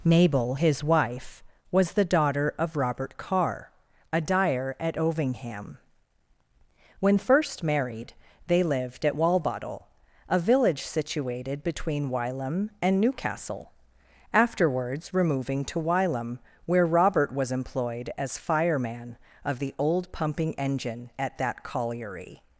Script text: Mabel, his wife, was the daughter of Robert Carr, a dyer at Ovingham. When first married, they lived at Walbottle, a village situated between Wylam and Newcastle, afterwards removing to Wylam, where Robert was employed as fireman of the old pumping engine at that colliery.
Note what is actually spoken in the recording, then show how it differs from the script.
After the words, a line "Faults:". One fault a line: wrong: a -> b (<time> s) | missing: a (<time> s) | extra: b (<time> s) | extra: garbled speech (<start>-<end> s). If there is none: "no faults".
Mabel, his wife, was the daughter of Robert Carr, a dyer at Ovingham. When first married, they lived at Walbottle, a village situated between Wylam and Newcastle, afterwards removing to Wylam, where Robert was employed as fireman of the old pumping engine at that colliery.
Faults:
no faults